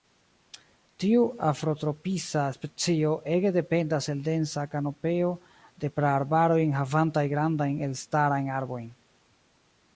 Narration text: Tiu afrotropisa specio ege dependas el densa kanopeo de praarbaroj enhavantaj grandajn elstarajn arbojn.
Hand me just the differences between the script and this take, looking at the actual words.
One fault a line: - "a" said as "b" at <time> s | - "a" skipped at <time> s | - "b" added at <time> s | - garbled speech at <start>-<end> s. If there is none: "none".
none